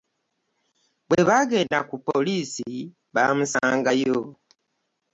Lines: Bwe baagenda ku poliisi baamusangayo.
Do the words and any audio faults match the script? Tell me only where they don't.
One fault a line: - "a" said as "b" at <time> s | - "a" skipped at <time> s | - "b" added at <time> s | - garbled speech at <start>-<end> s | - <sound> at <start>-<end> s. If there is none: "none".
none